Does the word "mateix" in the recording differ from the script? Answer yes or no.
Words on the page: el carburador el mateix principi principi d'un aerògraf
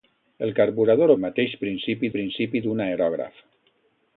no